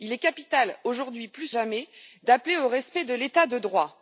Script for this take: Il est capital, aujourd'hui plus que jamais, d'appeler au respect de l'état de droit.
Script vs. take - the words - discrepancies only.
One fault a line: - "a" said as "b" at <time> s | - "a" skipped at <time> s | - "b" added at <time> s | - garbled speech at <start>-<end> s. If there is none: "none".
- "que" skipped at 1.5 s